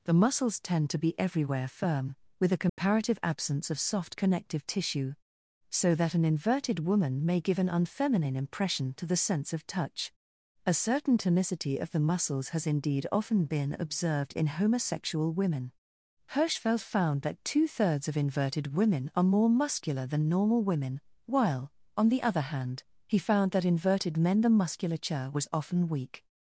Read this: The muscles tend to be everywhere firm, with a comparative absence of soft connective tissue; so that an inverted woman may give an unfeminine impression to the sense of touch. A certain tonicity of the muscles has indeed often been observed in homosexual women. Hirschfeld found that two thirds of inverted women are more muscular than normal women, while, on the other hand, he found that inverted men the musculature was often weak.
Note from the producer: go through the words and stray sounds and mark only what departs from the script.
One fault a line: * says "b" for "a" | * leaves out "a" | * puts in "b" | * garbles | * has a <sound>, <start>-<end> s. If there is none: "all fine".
* has a dropout, 2.7-2.8 s